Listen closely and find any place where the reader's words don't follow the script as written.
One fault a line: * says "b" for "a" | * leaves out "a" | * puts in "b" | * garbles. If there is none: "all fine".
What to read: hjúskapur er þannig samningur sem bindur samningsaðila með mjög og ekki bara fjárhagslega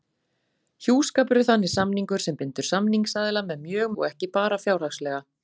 all fine